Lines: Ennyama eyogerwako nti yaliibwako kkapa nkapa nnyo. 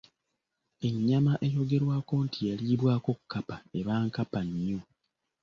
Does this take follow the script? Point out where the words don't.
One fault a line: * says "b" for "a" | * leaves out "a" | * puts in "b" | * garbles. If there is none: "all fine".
* puts in "eba"